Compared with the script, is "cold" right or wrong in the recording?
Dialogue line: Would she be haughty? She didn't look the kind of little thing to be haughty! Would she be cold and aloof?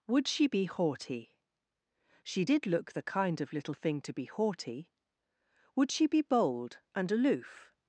wrong